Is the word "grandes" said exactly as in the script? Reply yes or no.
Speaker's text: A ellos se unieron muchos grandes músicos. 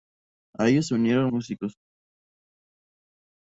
no